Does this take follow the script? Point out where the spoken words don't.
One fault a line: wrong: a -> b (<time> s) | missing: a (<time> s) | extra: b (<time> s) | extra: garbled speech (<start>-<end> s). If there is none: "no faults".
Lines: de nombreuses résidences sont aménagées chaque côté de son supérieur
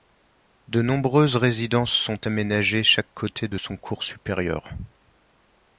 extra: cours (3.8 s)